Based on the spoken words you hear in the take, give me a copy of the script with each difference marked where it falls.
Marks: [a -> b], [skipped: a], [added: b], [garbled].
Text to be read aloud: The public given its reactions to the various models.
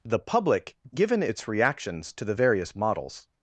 The public given its reactions to the various models.